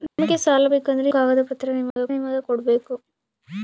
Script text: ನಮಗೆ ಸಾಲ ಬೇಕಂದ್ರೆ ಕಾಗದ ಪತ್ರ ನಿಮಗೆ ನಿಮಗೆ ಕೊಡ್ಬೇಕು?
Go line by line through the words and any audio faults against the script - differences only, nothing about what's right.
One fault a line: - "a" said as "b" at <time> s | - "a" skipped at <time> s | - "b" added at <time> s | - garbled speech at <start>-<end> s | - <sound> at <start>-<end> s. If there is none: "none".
- dropout at 0.1-0.2 s
- dropout at 1.9-2.0 s